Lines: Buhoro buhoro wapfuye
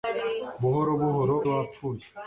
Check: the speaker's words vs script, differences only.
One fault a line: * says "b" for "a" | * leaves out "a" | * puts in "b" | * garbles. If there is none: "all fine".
all fine